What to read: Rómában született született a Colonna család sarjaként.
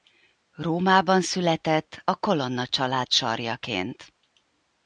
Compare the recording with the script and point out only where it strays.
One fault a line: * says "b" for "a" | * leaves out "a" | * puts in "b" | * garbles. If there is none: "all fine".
* leaves out "született"